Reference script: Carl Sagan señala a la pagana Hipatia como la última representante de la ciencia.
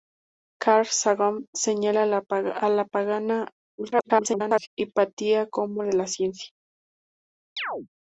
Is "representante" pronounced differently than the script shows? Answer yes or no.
yes